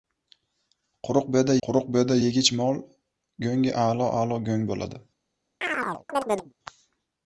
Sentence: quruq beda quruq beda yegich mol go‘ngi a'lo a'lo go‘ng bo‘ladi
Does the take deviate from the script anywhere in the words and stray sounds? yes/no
yes